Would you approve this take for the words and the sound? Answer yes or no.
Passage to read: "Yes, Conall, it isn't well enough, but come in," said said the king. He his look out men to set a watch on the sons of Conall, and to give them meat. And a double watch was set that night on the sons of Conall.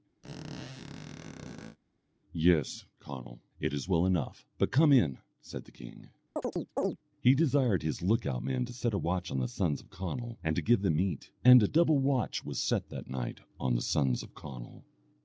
no